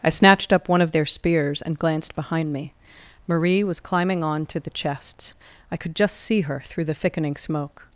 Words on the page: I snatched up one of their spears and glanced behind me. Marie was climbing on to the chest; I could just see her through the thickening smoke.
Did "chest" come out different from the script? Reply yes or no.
yes